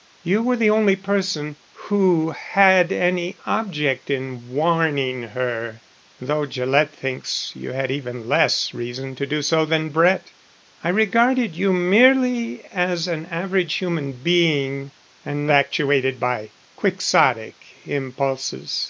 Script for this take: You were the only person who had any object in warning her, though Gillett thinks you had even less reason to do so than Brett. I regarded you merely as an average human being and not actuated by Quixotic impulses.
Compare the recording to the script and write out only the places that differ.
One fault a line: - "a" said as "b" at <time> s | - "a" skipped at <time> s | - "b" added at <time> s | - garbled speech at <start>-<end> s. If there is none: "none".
- "not" skipped at 15.5 s